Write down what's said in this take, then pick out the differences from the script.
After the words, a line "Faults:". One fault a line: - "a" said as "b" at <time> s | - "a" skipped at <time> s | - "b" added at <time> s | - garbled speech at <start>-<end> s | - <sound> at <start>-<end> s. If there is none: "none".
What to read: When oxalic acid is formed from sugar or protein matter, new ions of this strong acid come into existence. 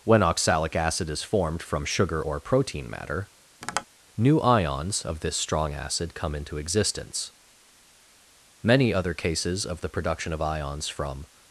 When oxalic acid is formed from sugar or protein matter, new ions of this strong acid come into existence. Many other cases of the production of ions from
Faults:
- tap at 3.6-3.9 s
- "Many other cases of the production of ions from" added at 8.6 s